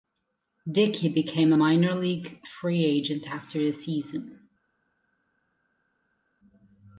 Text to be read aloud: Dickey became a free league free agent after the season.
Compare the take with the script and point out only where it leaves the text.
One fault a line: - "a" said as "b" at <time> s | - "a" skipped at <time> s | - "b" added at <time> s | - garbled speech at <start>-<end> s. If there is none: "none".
- "free" said as "minor" at 1.6 s